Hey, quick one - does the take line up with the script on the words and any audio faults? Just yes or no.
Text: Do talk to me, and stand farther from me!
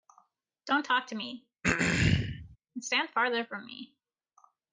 no